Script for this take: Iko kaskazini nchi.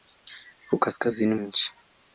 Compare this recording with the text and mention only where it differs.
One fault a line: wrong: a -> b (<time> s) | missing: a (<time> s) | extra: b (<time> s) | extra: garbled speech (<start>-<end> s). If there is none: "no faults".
no faults